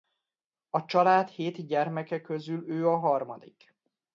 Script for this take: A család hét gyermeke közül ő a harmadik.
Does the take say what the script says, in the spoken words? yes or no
yes